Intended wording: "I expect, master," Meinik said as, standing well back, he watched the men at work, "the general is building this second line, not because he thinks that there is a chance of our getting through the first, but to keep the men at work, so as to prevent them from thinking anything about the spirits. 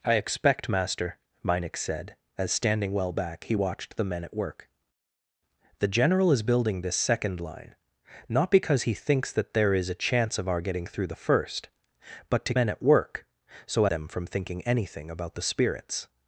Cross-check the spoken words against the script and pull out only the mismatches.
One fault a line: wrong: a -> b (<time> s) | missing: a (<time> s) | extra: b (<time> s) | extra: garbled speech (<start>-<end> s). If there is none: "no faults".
missing: keep the (12.5 s)
missing: as to prevent (13.9 s)